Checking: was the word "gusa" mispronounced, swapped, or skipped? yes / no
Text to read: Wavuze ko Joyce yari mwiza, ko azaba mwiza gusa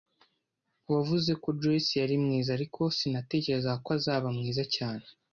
yes